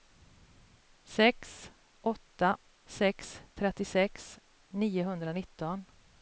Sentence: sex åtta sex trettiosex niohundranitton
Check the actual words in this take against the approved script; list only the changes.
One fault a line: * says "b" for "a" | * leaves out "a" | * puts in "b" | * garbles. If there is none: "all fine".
all fine